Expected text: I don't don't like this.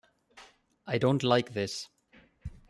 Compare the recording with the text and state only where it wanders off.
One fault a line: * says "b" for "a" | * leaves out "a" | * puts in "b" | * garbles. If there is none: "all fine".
* leaves out "don't"